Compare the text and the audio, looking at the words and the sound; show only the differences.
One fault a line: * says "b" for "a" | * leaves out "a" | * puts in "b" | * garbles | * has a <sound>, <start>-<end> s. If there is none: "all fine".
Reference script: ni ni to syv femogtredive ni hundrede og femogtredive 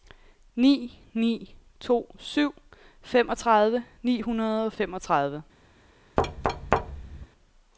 * has a thud, 6.2-7.3 s